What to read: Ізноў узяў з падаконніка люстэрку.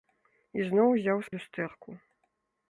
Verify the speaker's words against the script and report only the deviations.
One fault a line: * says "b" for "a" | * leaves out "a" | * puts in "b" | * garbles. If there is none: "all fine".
* leaves out "падаконніка"